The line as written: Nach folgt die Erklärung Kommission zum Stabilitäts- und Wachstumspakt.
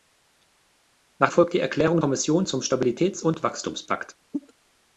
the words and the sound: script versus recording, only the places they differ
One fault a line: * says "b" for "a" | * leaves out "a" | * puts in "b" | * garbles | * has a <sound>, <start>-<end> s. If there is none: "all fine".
* has a cough, 4.3-4.5 s